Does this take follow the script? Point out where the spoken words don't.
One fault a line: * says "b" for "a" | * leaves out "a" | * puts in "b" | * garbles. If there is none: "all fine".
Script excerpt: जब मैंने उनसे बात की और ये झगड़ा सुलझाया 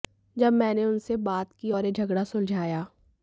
all fine